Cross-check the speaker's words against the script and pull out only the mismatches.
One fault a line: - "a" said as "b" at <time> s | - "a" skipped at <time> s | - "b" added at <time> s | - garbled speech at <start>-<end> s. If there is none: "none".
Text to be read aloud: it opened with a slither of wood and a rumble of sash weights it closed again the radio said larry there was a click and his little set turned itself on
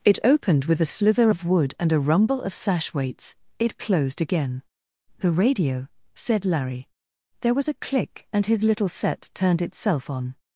none